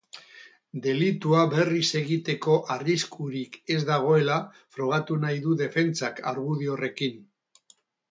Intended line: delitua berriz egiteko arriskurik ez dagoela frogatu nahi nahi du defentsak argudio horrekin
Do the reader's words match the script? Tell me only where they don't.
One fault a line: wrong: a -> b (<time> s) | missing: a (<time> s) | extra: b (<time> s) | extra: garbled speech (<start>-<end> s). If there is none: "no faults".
missing: nahi (5.4 s)